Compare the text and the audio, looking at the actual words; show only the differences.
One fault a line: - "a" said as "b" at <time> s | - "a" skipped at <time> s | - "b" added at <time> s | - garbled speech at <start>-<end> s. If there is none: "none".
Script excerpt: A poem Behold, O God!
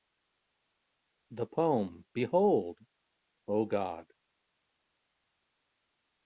- "A" said as "The" at 1.3 s